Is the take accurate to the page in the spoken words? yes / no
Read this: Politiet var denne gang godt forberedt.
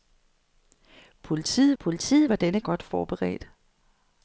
no